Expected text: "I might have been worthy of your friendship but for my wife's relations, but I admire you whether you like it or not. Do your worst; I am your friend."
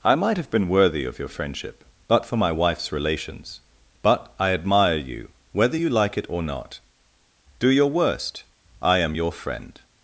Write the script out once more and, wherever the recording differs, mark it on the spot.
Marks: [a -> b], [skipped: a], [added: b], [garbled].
"I might have been worthy of your friendship but for my wife's relations, but I admire you whether you like it or not. Do your worst; I am your friend."